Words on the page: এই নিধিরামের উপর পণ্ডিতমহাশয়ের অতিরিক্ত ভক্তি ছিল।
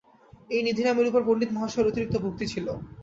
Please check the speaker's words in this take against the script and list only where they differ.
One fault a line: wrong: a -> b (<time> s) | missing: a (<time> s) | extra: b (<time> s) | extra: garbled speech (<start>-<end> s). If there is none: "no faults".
no faults